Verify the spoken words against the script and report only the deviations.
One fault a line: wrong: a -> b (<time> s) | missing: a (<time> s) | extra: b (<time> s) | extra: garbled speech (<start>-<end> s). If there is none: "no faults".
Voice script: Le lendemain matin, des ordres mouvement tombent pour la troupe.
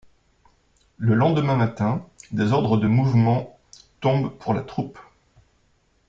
extra: de (2.8 s)